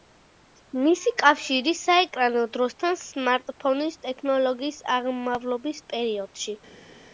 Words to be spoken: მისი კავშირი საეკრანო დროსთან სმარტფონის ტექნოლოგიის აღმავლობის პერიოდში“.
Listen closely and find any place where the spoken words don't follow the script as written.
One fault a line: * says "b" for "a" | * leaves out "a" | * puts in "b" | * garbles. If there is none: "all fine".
all fine